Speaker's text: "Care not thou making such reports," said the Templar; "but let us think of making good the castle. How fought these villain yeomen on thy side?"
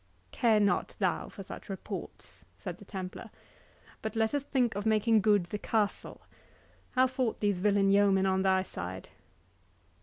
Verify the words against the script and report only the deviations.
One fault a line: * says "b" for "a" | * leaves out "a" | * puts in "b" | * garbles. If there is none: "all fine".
* says "for" for "making"